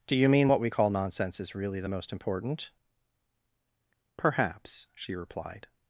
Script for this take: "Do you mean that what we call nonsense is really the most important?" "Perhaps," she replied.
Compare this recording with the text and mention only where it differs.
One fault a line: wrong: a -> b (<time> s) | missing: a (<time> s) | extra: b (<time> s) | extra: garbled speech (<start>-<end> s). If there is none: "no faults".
missing: that (0.5 s)